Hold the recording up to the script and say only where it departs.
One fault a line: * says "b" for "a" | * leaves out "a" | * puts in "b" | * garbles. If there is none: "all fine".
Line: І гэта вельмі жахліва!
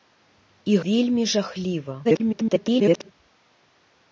* leaves out "гэта"
* garbles